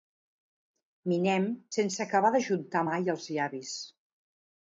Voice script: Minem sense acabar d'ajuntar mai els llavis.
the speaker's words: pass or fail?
pass